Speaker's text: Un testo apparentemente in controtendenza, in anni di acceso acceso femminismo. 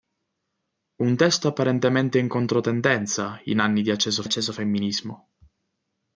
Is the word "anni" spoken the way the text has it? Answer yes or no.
yes